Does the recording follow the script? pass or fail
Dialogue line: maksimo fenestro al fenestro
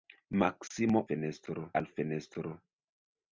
pass